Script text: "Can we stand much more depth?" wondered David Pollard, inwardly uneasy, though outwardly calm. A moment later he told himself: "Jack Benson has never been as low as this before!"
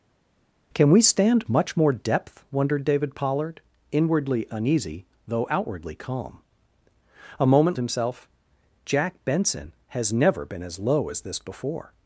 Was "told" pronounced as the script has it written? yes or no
no